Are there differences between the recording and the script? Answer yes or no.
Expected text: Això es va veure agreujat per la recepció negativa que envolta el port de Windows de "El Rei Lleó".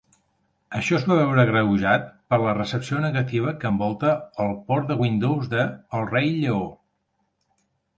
no